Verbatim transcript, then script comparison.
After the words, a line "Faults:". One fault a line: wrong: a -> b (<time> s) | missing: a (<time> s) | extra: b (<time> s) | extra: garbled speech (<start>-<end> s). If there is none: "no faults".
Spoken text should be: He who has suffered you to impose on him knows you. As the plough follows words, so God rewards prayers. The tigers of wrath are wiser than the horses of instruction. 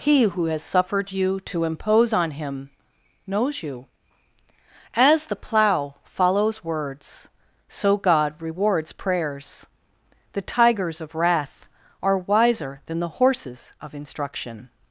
He who has suffered you to impose on him knows you. As the plough follows words, so God rewards prayers. The tigers of wrath are wiser than the horses of instruction.
Faults:
no faults